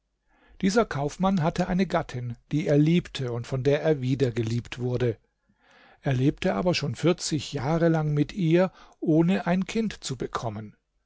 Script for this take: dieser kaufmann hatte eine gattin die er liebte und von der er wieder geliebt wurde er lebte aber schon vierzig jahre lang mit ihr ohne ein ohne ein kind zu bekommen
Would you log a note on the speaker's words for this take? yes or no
yes